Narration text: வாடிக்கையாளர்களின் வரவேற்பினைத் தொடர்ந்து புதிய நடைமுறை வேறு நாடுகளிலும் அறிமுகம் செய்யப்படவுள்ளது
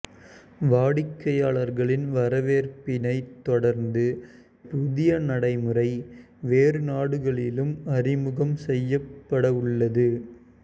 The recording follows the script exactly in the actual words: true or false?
true